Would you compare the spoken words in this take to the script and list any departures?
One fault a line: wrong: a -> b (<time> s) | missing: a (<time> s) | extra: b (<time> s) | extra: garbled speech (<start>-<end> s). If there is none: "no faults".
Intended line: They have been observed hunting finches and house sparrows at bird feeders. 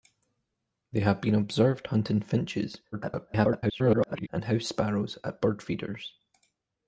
extra: garbled speech (2.9-4.3 s)